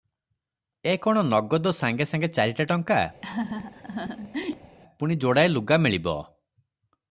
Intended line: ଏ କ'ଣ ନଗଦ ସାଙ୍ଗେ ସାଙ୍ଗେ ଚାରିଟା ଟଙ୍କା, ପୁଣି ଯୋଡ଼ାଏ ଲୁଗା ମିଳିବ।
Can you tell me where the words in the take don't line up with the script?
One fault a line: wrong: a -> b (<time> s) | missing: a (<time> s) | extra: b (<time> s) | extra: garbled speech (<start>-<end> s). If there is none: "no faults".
no faults